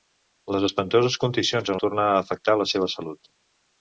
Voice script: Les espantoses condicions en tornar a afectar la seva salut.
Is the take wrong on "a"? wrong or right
right